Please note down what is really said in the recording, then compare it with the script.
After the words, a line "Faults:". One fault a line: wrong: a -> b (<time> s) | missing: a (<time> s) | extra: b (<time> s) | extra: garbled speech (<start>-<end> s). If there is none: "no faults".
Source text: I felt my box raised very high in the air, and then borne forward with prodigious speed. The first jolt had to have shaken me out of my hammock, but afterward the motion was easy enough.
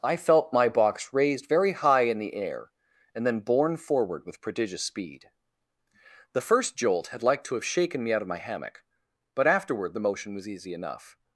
I felt my box raised very high in the air, and then borne forward with prodigious speed. The first jolt had like to have shaken me out of my hammock, but afterward the motion was easy enough.
Faults:
extra: like (7.2 s)